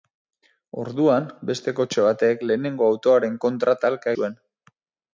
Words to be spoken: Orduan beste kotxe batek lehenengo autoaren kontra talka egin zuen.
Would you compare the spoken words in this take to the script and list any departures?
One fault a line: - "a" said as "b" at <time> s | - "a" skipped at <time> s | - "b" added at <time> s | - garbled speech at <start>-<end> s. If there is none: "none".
- "egin" skipped at 4.2 s